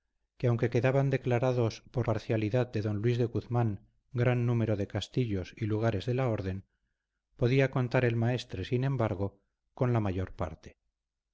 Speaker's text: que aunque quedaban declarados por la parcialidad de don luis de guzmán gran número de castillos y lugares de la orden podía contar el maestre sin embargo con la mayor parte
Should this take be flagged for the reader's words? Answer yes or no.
yes